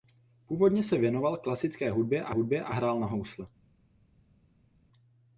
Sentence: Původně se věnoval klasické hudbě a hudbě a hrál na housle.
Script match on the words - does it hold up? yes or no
yes